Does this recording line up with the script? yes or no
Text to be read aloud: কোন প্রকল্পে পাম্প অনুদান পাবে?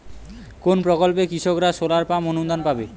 no